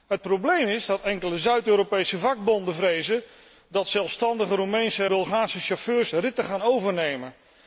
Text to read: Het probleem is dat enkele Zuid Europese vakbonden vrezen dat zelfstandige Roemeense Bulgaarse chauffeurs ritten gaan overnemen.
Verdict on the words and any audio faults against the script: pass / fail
pass